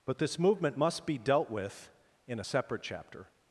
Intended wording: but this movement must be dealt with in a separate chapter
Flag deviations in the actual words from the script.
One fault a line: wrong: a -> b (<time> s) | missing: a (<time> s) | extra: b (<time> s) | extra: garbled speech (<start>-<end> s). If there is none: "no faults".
no faults